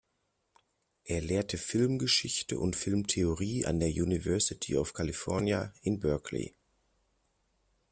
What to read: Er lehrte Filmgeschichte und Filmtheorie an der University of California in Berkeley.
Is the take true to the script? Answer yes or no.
yes